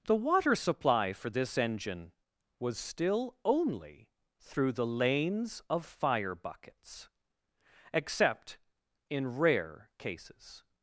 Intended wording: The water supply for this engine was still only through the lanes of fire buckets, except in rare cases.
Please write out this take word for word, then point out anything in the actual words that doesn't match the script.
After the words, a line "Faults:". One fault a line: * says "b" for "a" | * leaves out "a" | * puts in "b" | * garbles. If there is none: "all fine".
The water supply for this engine was still only through the lanes of fire buckets, except in rare cases.
Faults:
all fine